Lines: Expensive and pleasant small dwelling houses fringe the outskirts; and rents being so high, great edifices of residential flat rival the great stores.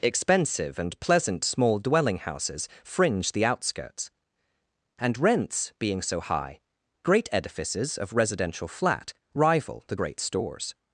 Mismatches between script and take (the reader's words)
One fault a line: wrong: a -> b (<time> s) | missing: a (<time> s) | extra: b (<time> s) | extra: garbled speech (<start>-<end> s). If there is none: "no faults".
no faults